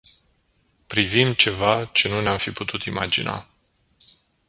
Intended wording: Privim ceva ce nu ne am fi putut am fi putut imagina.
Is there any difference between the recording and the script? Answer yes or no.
yes